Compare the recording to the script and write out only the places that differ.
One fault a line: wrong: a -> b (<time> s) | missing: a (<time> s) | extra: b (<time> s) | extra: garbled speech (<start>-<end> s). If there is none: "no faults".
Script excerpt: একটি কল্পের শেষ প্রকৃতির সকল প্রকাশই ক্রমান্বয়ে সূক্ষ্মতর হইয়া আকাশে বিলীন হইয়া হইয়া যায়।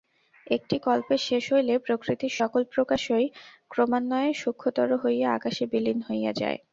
extra: হইলে (1.5 s)
missing: হইয়া (6.3 s)